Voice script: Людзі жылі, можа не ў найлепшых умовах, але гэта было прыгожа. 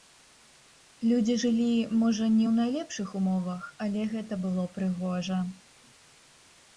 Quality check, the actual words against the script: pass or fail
pass